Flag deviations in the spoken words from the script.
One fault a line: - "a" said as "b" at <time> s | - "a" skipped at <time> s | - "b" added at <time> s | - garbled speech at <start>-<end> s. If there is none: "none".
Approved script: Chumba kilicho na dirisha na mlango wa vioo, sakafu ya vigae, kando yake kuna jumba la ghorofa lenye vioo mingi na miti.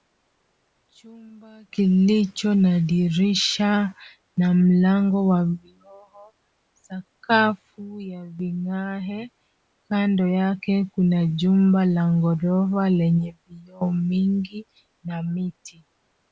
none